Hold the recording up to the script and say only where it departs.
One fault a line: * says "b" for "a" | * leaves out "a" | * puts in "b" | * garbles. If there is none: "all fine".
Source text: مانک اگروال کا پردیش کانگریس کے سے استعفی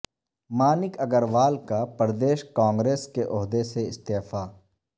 * puts in "عہدے"